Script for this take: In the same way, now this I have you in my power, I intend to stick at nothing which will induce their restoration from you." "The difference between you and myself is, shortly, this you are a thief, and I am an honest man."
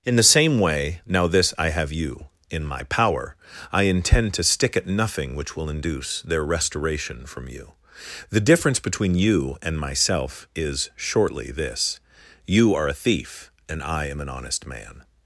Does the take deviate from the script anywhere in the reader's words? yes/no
no